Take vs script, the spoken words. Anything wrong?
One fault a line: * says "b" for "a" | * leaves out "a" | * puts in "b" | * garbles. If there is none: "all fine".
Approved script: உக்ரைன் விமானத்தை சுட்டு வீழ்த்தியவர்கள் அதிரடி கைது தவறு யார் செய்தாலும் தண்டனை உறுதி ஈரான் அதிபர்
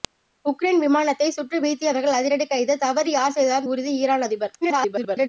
* leaves out "தண்டனை"
* garbles